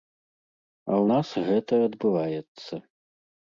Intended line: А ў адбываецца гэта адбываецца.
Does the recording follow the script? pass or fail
fail